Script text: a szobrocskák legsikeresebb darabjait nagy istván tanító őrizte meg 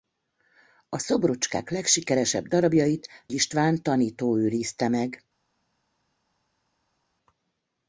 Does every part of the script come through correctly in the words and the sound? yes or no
no